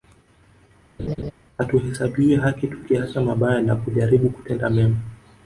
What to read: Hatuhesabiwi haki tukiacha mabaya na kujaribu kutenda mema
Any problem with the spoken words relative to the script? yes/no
no